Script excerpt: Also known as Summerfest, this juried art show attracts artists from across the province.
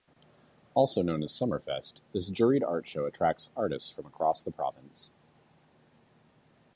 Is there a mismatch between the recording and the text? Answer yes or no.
no